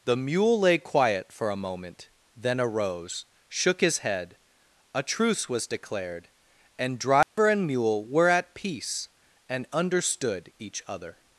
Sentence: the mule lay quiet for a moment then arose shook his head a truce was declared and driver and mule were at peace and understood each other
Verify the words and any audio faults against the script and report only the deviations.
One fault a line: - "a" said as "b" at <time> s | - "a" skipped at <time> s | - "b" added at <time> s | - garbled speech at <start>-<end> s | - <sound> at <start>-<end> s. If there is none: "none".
- dropout at 7.2-7.4 s